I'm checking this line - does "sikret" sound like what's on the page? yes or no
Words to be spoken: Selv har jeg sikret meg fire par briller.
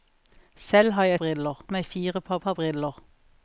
no